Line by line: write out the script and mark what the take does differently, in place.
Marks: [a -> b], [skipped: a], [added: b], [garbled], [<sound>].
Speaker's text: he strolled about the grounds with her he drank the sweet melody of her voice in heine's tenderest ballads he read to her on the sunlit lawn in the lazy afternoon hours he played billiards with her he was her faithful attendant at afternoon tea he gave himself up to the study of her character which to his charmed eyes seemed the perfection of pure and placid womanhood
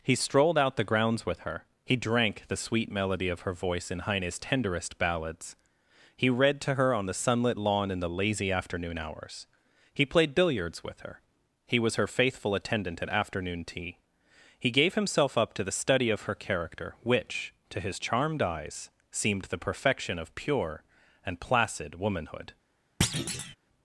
he strolled [about -> out] the grounds with her he drank the sweet melody of her voice in heine's tenderest ballads he read to her on the sunlit lawn in the lazy afternoon hours he played billiards with her he was her faithful attendant at afternoon tea he gave himself up to the study of her character which to his charmed eyes seemed the perfection of pure and placid womanhood [thud]